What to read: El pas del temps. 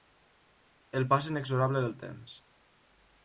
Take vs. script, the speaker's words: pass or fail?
fail